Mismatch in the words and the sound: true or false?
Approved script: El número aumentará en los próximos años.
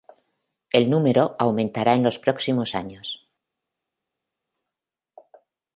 false